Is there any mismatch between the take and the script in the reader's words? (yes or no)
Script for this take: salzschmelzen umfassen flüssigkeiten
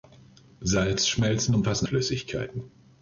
no